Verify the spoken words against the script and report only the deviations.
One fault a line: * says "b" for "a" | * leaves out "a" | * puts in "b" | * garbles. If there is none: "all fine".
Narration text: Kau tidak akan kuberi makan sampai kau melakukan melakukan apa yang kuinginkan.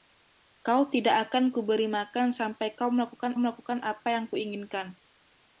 all fine